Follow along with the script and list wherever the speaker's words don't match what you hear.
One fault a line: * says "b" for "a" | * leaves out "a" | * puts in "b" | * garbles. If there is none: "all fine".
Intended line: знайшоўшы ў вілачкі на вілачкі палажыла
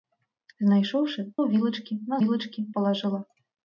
all fine